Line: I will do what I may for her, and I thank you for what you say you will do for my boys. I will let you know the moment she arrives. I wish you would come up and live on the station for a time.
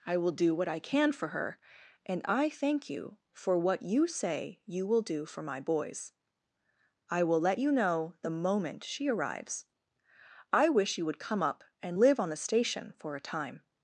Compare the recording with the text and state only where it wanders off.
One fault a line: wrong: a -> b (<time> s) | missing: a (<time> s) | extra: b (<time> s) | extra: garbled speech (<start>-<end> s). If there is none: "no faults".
wrong: may -> can (0.8 s)